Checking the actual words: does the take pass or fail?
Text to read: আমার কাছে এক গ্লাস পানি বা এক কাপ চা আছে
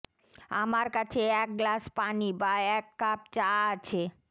pass